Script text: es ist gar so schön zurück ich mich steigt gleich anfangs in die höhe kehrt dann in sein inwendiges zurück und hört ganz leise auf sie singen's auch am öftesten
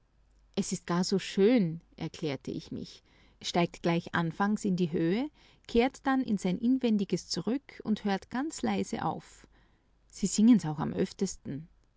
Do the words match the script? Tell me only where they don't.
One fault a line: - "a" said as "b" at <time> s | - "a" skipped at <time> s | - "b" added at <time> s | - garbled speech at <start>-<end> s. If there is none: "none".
- "zurück" said as "erklärte" at 1.9 s